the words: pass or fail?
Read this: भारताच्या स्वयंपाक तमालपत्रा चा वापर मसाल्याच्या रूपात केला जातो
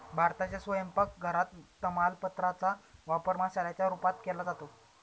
fail